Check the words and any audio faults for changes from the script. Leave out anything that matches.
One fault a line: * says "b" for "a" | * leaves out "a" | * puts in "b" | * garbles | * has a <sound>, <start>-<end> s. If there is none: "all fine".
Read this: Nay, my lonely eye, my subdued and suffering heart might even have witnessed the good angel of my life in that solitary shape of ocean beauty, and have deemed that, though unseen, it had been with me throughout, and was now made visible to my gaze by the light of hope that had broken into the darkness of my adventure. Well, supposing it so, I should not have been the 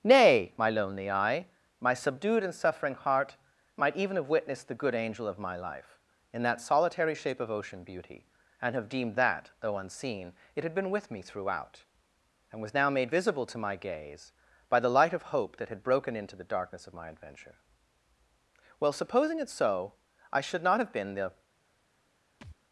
* has a thud, 22.4-22.6 s